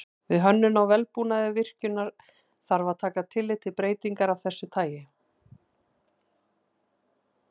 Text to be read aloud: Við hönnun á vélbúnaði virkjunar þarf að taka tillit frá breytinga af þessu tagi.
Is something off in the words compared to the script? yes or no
yes